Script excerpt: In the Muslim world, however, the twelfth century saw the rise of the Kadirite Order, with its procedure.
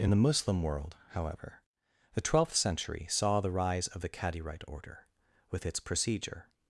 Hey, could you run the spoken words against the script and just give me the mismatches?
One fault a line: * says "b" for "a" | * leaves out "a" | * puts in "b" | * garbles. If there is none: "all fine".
all fine